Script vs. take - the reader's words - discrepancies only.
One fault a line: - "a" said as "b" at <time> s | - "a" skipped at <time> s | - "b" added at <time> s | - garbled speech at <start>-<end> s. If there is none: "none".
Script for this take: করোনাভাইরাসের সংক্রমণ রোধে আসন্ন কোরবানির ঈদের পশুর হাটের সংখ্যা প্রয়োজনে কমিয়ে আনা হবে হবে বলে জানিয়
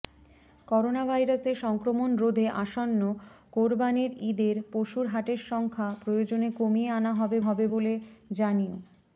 none